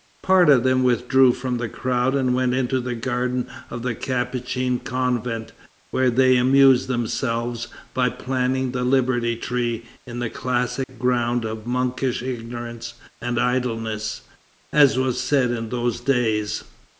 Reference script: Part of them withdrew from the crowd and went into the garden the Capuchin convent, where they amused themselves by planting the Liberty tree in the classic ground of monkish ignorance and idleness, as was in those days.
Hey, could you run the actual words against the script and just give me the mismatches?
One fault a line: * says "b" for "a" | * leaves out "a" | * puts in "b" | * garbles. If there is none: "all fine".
* puts in "of"
* puts in "said"